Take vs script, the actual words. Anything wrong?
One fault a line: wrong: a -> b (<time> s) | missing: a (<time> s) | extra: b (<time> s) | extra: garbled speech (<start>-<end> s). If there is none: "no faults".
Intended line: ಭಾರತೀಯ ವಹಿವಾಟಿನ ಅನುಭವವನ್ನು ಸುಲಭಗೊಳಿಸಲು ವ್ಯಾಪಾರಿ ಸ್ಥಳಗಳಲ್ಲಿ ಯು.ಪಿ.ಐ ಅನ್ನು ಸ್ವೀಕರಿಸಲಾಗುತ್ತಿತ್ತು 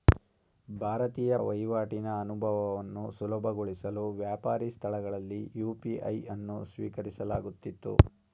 no faults